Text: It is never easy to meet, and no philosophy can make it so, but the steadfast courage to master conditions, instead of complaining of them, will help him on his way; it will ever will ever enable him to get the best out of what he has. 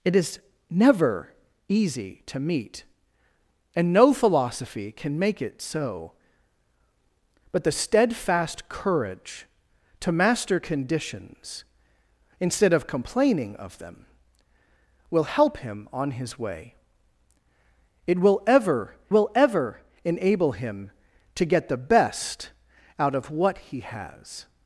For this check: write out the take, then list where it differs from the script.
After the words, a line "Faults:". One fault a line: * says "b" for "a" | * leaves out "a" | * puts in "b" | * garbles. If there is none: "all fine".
It is never easy to meet, and no philosophy can make it so, but the steadfast courage to master conditions, instead of complaining of them, will help him on his way; it will ever will ever enable him to get the best out of what he has.
Faults:
all fine